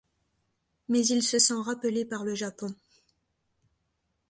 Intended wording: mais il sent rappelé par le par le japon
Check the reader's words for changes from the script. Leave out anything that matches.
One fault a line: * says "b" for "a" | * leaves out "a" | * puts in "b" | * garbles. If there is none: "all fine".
* puts in "se"
* leaves out "par le"